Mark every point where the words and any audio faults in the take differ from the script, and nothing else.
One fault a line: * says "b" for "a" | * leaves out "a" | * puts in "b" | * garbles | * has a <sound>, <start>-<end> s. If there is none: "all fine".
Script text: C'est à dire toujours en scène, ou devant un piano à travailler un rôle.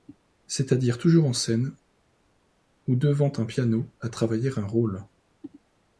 all fine